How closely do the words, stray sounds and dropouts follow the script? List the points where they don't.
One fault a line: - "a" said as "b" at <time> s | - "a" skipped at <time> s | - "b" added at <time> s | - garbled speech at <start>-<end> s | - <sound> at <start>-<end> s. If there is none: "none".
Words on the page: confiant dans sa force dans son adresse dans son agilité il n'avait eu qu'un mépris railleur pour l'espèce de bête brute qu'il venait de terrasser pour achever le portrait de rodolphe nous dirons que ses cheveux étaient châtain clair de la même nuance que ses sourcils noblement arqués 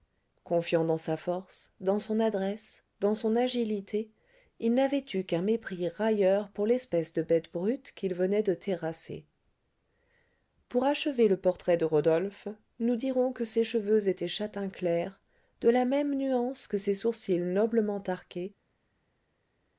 none